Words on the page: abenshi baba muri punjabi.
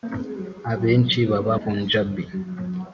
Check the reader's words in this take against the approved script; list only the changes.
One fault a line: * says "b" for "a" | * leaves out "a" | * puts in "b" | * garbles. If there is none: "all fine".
* leaves out "muri"